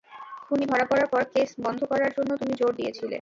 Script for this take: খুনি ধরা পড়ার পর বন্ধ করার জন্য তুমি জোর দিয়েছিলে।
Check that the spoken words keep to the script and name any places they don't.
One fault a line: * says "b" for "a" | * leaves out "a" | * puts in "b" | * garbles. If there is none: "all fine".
* puts in "কেস"